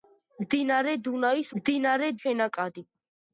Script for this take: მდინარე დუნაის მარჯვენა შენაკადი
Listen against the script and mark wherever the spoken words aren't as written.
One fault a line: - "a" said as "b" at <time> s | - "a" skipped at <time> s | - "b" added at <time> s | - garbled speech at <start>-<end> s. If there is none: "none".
- "მარჯვენა" said as "მდინარე" at 1.6 s